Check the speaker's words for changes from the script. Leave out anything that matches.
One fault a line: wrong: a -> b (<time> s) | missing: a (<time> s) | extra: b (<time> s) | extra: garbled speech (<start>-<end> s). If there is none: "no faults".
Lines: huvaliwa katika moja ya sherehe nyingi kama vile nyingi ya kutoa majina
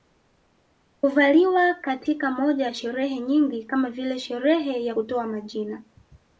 wrong: nyingi -> sherehe (4.2 s)